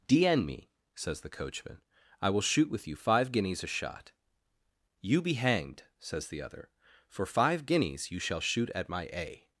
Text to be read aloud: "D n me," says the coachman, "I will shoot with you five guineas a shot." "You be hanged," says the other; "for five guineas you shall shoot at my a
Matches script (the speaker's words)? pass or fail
pass